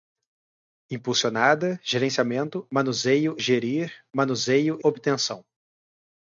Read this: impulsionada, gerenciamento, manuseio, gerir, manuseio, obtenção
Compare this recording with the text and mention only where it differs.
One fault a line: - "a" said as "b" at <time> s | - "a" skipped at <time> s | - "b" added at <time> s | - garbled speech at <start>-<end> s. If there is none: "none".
none